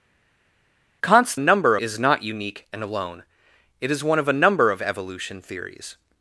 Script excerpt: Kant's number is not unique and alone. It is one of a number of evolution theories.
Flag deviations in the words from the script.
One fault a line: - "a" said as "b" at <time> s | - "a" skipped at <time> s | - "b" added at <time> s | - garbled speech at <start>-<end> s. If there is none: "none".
none